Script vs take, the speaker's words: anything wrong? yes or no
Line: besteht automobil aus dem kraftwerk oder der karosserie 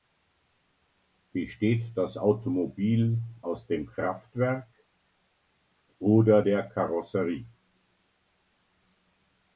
yes